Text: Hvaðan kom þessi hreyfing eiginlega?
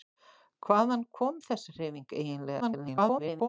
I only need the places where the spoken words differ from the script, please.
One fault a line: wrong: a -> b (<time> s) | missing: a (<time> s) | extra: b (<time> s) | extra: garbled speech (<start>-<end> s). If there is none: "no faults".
extra: garbled speech (2.6-3.5 s)